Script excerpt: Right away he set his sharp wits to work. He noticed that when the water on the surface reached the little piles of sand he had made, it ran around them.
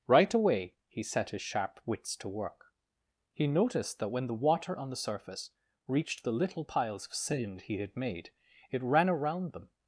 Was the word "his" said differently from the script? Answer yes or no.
no